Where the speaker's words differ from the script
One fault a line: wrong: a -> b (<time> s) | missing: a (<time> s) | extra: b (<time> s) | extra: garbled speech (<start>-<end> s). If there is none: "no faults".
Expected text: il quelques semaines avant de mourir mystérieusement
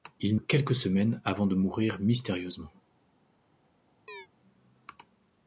no faults